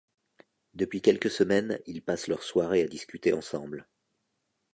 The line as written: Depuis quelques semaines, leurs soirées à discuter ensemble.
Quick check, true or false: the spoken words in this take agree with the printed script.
false